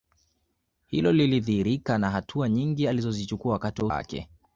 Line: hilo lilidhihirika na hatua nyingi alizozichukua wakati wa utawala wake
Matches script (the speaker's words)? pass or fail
fail